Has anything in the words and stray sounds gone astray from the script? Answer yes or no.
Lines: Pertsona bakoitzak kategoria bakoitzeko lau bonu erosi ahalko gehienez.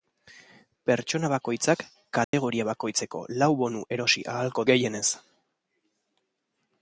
yes